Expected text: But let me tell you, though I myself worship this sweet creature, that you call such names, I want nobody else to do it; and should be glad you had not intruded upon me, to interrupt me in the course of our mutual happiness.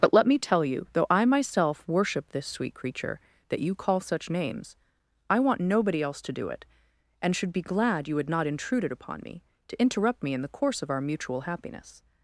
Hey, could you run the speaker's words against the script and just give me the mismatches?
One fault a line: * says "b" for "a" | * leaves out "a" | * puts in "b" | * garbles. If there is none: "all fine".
all fine